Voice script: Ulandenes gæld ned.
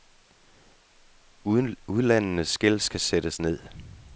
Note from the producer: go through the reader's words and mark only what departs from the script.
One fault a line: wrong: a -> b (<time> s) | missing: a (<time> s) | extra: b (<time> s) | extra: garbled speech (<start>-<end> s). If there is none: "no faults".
extra: skal sættes (2.8 s)